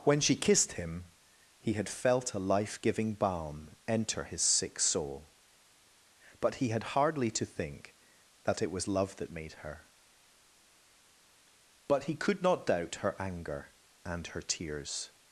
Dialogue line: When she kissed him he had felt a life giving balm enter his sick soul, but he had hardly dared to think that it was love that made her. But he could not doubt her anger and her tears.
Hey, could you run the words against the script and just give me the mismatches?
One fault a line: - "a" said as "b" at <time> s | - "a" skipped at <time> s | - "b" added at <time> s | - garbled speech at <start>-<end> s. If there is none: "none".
- "dared" skipped at 7.3 s